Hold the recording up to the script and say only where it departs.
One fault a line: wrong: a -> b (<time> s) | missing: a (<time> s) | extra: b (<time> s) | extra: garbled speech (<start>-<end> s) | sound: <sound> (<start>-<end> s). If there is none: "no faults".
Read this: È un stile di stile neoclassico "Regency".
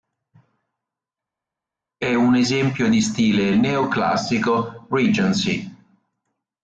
wrong: stile -> esempio (2.3 s)